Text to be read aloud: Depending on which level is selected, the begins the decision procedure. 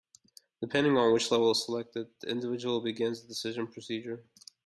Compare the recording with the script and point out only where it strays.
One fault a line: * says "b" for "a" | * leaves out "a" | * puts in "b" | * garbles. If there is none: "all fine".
* puts in "individual"